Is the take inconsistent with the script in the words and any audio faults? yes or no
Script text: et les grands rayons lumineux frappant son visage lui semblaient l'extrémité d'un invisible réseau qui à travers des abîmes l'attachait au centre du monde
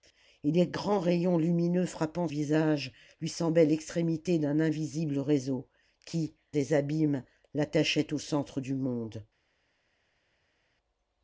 yes